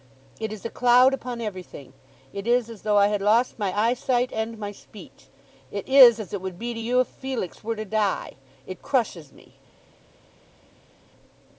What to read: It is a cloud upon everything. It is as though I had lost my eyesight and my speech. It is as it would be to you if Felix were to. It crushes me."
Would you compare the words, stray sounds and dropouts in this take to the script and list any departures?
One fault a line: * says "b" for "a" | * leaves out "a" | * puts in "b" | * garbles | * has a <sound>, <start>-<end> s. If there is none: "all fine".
* puts in "die"